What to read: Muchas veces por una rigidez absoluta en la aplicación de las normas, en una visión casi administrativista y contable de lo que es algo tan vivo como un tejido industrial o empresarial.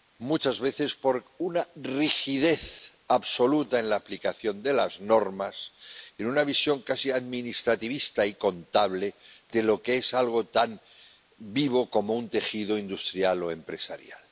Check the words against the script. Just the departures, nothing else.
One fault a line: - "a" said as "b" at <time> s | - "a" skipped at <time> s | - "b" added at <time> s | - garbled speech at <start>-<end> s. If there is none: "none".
none